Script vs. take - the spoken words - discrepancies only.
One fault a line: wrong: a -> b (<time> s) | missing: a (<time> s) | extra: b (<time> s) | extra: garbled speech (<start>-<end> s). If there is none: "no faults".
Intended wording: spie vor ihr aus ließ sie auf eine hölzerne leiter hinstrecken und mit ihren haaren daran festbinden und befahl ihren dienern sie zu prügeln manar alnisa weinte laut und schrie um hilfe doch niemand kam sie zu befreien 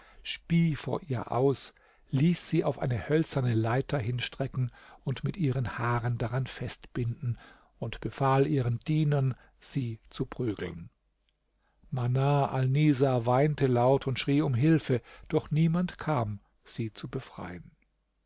no faults